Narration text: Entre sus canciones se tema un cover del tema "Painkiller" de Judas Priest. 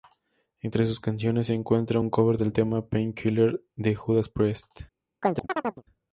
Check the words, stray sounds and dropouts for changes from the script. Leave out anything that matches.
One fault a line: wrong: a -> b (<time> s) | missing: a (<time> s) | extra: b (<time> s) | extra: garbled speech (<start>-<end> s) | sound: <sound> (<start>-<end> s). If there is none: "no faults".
wrong: tema -> encuentra (1.5 s)
sound: chirp (5.2-5.8 s)